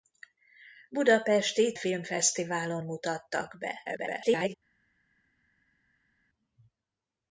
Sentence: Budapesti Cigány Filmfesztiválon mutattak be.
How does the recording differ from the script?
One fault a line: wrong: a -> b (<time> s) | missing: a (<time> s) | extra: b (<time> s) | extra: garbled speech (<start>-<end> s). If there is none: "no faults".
missing: Cigány (1.8 s)
extra: garbled speech (3.8-4.5 s)